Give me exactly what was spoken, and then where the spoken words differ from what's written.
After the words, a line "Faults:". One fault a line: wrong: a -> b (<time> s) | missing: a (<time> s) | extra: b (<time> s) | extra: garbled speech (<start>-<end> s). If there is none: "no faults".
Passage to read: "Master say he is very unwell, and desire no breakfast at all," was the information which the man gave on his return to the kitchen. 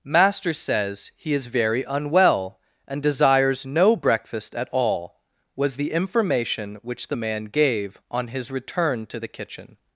"Master says he is very unwell, and desires no breakfast at all," was the information which the man gave on his return to the kitchen.
Faults:
wrong: say -> says (0.5 s)
wrong: desire -> desires (3.0 s)